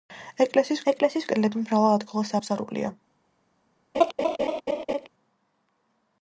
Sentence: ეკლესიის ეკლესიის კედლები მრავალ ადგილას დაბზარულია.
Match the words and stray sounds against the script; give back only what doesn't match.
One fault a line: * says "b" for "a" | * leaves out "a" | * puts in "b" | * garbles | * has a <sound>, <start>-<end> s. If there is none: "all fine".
* has a laugh, 3.9-5.1 s